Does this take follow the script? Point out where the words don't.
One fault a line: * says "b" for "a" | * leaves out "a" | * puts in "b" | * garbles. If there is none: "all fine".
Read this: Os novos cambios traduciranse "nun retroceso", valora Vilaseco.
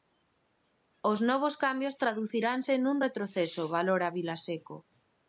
all fine